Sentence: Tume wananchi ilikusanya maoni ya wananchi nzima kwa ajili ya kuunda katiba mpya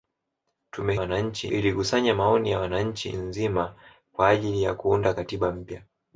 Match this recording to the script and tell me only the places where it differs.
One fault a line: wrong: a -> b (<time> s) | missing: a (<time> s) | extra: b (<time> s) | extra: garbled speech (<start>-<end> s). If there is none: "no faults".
no faults